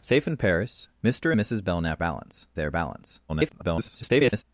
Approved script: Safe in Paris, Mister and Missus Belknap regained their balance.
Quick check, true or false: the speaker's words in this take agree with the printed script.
false